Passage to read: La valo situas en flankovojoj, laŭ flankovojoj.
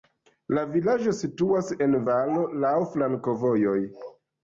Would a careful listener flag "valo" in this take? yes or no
yes